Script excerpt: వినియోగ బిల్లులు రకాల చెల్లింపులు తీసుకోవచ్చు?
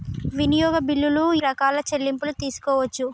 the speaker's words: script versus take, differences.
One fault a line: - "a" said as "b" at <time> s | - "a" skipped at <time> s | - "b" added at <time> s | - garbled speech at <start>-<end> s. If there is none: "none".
none